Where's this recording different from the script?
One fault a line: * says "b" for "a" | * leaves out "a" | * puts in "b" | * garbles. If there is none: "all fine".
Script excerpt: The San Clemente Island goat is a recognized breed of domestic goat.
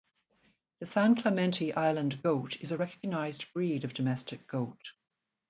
all fine